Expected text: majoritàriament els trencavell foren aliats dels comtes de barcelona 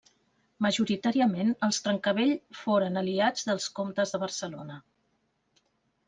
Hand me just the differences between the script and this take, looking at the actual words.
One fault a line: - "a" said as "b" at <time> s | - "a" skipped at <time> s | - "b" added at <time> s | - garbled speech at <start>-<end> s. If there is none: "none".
none